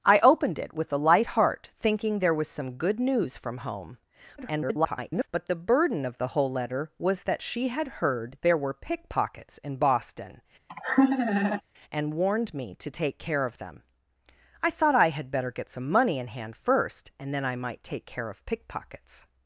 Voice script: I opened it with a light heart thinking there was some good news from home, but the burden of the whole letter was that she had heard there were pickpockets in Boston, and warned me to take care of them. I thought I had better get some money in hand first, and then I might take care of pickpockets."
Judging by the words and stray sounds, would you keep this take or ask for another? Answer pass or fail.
fail